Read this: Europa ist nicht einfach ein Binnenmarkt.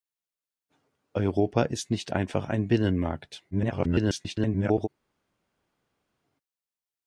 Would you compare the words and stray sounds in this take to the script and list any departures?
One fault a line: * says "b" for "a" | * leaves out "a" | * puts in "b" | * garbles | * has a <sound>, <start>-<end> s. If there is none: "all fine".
* garbles